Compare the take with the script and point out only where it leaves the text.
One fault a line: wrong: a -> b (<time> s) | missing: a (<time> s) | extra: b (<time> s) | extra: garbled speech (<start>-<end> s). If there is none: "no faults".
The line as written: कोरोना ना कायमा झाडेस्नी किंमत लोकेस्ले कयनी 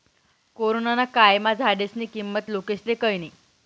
no faults